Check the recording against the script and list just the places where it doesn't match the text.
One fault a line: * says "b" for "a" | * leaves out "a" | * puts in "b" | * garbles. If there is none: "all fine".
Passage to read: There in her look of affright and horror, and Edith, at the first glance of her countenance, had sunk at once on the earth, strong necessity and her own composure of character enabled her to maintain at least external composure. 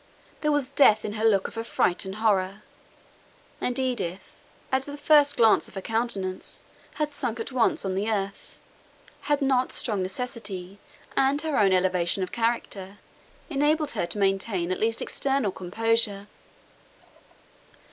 * puts in "was death"
* puts in "had not"
* says "elevation" for "composure"